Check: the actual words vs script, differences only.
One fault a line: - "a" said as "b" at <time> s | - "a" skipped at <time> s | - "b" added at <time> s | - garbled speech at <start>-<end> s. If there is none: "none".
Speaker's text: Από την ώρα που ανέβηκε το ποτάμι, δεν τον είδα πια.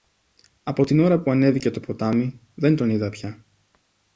none